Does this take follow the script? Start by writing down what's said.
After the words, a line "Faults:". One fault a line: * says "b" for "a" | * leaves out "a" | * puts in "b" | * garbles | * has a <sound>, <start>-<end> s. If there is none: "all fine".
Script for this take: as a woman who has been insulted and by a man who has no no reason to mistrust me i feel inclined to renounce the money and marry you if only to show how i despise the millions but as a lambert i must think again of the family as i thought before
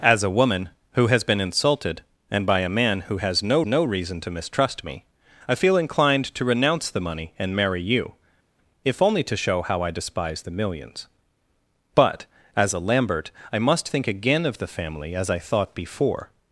as a woman who has been insulted and by a man who has no no reason to mistrust me i feel inclined to renounce the money and marry you if only to show how i despise the millions but as a lambert i must think again of the family as i thought before
Faults:
all fine